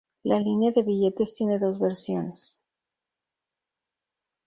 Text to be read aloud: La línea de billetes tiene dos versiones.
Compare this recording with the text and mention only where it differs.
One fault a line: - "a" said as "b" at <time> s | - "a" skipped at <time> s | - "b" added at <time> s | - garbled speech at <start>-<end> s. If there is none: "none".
none